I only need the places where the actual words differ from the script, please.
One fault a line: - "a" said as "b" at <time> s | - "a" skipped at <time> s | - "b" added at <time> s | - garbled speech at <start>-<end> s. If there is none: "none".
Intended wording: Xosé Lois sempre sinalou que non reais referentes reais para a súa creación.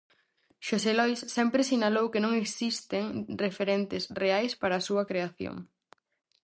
- "reais" said as "existen" at 2.4 s